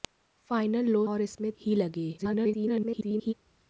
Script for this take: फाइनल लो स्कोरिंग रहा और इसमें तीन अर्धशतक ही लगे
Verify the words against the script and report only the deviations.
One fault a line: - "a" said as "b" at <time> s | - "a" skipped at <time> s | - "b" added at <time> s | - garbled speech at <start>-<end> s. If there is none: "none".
- "स्कोरिंग रहा" skipped at 1.0 s
- "तीन अर्धशतक" skipped at 1.5 s
- garbled speech at 2.2-3.3 s